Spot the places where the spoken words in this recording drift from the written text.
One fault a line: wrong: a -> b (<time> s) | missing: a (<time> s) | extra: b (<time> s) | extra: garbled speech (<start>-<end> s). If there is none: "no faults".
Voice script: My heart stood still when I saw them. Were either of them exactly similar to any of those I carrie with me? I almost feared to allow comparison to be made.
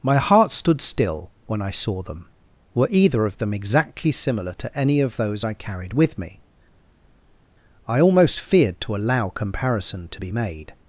wrong: carrie -> carried (5.5 s)